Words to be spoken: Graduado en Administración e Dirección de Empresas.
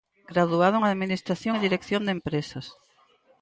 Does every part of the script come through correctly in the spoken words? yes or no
yes